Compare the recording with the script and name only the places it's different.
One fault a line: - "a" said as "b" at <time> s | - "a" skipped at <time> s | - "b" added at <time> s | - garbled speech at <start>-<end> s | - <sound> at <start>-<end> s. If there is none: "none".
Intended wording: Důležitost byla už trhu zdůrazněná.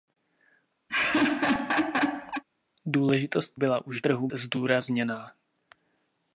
- laugh at 0.9-2.4 s